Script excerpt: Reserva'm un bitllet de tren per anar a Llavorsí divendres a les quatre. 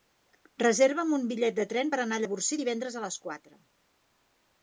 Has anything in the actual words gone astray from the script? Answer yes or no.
no